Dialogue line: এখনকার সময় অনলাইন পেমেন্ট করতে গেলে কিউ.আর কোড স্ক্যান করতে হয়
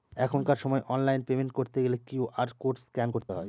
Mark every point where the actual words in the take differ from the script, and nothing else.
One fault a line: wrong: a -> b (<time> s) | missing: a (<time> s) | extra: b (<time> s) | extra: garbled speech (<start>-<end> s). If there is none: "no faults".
no faults